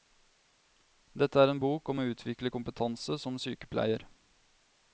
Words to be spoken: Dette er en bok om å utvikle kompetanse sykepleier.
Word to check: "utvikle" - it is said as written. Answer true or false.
true